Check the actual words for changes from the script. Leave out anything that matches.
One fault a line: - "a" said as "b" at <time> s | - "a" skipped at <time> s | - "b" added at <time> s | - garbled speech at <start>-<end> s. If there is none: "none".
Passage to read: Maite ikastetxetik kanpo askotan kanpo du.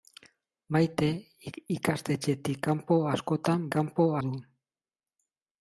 none